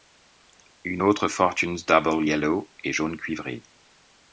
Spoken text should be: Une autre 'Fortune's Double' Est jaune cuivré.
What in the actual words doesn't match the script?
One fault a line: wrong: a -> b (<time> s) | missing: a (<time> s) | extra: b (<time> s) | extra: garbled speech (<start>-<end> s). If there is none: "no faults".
extra: Yellow (2.2 s)